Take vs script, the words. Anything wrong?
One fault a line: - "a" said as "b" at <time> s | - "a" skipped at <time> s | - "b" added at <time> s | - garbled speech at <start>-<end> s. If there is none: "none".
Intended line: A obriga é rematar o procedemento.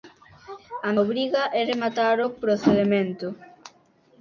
none